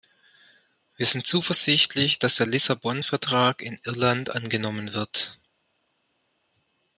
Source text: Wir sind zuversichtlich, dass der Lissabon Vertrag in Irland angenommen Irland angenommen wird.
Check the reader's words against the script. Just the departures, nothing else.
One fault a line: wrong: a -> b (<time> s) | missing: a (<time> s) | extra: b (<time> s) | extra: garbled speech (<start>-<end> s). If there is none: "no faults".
missing: Irland angenommen (4.9 s)